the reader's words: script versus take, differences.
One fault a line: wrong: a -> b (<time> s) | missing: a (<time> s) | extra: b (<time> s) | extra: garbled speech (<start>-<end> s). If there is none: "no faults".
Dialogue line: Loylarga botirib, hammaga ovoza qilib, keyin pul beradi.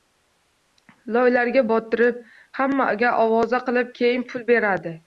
no faults